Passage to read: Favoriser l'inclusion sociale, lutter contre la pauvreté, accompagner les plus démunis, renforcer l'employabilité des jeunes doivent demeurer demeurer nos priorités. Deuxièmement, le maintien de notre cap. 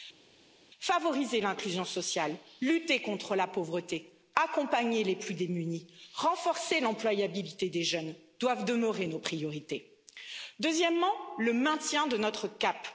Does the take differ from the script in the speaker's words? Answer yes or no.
yes